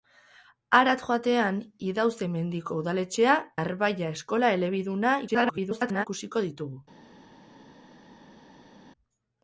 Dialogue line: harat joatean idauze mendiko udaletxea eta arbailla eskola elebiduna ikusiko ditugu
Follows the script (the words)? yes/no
no